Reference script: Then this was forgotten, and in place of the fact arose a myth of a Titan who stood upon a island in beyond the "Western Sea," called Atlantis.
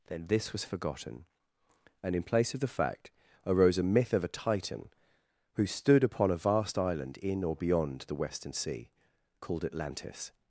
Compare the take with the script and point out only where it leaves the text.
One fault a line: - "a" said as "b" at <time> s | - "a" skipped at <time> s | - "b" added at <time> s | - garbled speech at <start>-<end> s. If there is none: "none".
- "vast" added at 6.4 s
- "or" added at 7.4 s